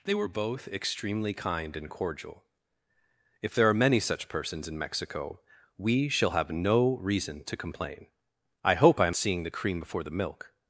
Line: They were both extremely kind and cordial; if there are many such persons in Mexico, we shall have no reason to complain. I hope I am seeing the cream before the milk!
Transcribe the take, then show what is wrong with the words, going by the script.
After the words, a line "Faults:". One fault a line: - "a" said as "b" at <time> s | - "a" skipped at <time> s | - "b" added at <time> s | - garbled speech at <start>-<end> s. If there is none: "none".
They were both extremely kind and cordial; if there are many such persons in Mexico, we shall have no reason to complain. I hope I am seeing the cream before the milk!
Faults:
none